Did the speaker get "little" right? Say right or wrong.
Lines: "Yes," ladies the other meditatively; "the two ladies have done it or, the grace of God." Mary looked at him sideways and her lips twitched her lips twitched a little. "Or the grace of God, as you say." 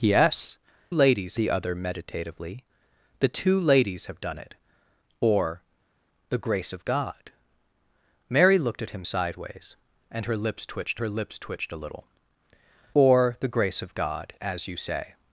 right